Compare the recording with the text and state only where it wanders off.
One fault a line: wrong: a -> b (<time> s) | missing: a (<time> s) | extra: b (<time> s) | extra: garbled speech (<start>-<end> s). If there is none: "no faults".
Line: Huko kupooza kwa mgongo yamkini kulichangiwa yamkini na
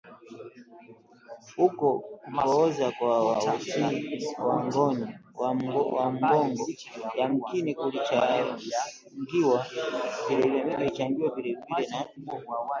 extra: uti wa (3.3 s)
wrong: yamkini -> vilevile (10.3 s)